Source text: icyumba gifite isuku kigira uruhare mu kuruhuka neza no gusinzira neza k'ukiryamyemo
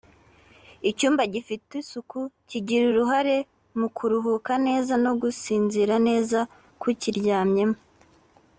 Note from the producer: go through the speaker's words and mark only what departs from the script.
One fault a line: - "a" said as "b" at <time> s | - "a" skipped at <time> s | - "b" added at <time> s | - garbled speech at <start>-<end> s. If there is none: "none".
none